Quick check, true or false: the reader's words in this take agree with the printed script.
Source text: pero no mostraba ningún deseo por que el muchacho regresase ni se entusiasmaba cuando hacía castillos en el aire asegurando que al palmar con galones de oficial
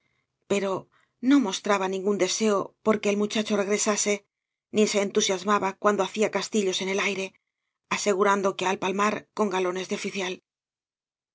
true